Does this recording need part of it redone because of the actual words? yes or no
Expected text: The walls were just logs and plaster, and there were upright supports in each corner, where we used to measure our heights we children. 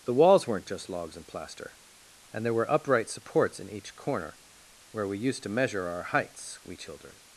yes